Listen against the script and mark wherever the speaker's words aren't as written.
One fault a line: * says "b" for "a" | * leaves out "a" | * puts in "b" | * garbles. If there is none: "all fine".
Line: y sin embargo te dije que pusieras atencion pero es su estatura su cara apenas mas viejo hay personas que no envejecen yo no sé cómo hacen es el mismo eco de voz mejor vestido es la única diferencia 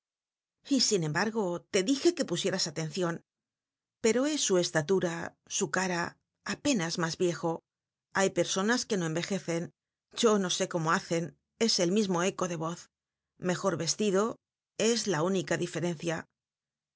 all fine